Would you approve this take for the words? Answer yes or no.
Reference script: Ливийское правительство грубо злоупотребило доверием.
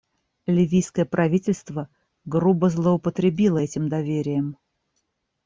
no